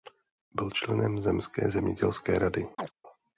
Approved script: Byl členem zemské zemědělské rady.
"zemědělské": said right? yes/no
yes